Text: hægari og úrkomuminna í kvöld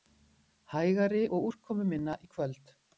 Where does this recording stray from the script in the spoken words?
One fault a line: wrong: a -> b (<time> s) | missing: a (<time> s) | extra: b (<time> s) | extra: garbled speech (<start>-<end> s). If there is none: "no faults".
no faults